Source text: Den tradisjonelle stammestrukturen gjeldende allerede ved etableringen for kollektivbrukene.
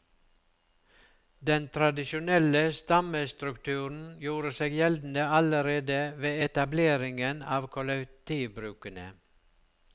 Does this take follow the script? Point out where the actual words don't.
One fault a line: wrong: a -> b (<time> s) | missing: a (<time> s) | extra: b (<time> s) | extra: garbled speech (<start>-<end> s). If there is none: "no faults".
extra: gjorde seg (4.2 s)
wrong: for -> av (7.6 s)